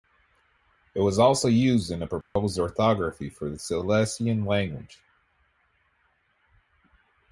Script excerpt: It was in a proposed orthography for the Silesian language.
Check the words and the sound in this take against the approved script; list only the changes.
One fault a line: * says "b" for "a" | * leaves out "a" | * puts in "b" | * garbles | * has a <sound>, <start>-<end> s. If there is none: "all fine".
* puts in "also used"
* has a dropout, 2.2-2.4 s